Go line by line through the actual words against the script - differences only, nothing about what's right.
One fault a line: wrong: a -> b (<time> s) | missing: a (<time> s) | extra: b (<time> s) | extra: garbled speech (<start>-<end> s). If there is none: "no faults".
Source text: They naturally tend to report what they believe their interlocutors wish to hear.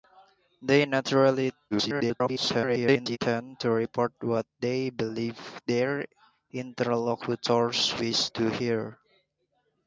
extra: garbled speech (1.7-3.2 s)